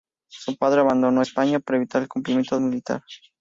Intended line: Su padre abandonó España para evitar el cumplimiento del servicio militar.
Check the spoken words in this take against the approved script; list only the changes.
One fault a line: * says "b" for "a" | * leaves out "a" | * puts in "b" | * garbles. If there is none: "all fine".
* leaves out "del servicio"